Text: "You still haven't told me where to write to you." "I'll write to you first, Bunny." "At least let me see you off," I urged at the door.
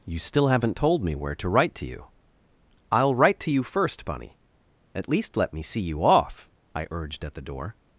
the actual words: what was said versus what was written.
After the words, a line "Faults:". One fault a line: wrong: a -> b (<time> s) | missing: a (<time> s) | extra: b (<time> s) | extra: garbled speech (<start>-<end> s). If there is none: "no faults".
"You still haven't told me where to write to you." "I'll write to you first, Bunny." "At least let me see you off," I urged at the door.
Faults:
no faults